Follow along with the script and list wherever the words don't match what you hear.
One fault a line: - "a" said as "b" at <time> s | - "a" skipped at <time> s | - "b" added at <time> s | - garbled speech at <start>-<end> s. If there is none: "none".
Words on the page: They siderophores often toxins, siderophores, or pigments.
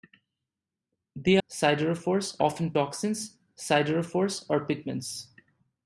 none